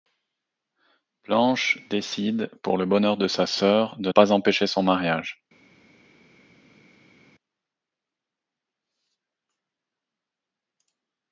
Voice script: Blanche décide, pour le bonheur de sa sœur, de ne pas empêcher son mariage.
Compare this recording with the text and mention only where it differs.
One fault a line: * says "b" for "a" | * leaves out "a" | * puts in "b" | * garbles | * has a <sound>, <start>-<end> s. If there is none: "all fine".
* leaves out "ne"